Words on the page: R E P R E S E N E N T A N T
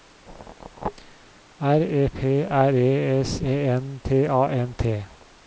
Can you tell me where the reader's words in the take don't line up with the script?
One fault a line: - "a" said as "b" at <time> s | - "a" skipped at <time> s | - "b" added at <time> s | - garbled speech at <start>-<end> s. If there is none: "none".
- "E N" skipped at 4.0 s